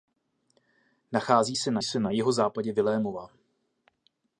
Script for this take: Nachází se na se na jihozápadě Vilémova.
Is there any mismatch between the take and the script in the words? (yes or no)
no